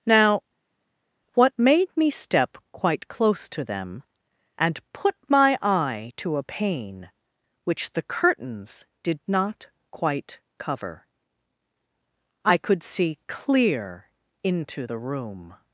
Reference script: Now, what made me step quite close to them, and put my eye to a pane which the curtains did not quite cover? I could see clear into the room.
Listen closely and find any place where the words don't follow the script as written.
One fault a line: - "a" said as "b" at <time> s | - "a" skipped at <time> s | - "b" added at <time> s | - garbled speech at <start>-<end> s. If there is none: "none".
none